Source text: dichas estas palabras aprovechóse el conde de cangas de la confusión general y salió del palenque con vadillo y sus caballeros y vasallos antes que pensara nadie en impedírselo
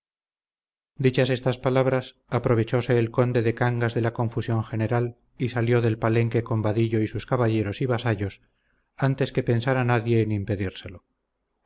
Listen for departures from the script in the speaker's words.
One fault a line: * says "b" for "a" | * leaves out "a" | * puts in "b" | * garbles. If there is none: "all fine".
all fine